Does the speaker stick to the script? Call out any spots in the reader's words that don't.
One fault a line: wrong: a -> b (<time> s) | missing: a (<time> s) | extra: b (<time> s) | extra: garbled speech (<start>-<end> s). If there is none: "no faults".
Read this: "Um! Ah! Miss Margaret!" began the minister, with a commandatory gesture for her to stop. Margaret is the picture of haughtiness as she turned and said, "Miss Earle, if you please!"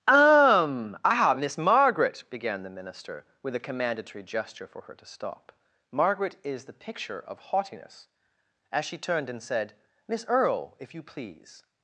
no faults